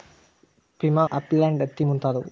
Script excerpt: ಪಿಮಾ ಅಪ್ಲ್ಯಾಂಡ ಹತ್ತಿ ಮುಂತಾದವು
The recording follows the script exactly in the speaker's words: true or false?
true